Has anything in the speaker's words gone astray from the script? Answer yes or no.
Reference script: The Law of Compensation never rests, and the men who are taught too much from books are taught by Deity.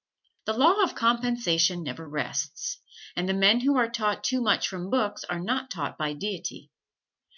yes